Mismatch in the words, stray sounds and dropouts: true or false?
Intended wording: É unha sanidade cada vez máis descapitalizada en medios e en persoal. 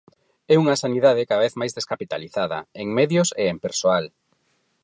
false